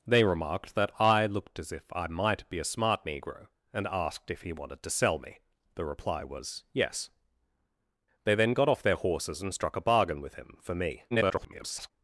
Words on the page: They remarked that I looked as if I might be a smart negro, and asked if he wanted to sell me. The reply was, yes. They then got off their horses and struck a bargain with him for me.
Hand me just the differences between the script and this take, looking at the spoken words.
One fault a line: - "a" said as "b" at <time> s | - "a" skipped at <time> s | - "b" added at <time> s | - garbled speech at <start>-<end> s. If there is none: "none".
- garbled speech at 11.1-11.9 s